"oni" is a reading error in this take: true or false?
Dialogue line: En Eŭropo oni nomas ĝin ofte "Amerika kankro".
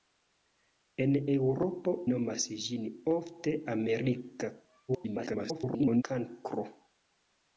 true